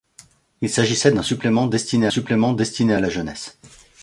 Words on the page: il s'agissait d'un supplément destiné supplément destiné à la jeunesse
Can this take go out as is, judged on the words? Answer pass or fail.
pass